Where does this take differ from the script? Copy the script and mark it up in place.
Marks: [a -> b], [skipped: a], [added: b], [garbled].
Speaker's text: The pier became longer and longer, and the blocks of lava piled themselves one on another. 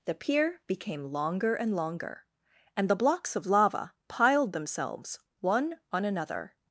The pier became longer and longer, and the blocks of lava piled themselves one on another.